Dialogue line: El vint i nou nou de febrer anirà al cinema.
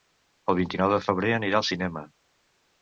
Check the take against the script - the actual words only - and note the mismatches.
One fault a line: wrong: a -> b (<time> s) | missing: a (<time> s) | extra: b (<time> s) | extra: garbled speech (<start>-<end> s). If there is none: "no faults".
missing: nou (0.9 s)